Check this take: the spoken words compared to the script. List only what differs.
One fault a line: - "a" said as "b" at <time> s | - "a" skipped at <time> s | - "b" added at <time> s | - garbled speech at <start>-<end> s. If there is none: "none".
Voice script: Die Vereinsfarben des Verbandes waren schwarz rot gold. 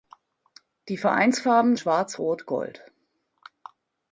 - "des Verbandes waren" skipped at 1.8 s